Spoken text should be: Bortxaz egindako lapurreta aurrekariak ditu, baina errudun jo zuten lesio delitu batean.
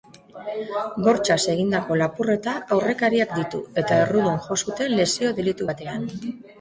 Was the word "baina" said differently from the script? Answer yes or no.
yes